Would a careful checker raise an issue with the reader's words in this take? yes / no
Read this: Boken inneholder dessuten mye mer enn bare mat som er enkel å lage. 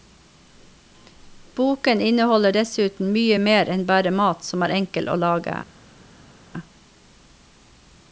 no